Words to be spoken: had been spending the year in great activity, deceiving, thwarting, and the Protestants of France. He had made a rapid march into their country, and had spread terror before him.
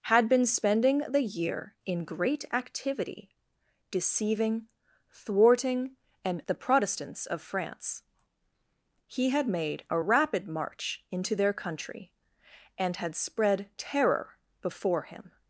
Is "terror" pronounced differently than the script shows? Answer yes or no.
no